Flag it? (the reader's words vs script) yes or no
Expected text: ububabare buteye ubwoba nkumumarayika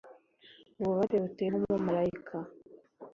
yes